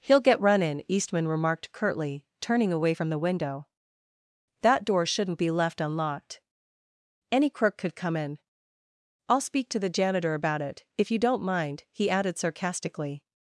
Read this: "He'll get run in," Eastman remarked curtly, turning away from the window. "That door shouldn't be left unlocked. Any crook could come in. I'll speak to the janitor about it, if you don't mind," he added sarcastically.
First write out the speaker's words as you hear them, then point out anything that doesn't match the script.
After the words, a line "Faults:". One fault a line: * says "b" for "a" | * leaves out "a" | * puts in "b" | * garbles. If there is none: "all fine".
"He'll get run in," Eastman remarked curtly, turning away from the window. "That door shouldn't be left unlocked. Any crook could come in. I'll speak to the janitor about it, if you don't mind," he added sarcastically.
Faults:
all fine